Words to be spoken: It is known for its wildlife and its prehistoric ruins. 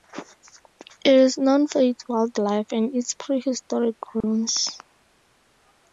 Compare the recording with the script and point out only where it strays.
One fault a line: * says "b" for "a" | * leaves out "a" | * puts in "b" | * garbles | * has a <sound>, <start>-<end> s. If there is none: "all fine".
* has a dropout, 4.2-4.2 s